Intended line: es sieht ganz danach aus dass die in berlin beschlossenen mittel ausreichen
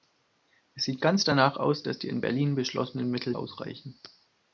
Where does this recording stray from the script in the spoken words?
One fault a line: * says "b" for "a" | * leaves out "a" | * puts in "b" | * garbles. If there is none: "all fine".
all fine